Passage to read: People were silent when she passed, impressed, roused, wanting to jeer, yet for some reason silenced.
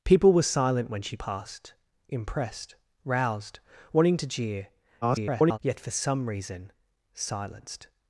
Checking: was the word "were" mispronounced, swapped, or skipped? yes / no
no